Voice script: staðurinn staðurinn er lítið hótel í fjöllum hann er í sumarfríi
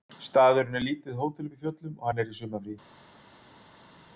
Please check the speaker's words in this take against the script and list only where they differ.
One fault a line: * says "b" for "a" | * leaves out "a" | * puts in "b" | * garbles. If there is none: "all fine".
* leaves out "staðurinn"
* puts in "uppi"
* puts in "og"